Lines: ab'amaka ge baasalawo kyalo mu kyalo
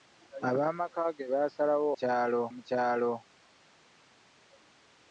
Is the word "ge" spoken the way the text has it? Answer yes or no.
yes